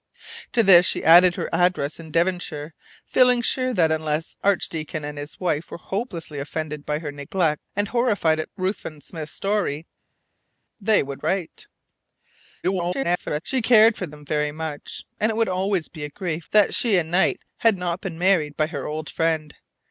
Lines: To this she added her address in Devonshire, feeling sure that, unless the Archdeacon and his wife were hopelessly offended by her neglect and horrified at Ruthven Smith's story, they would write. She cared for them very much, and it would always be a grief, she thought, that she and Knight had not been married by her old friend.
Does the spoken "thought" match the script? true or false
false